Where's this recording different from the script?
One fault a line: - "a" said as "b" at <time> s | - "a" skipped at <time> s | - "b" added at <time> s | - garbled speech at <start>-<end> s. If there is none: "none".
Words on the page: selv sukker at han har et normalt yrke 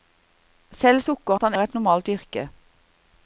none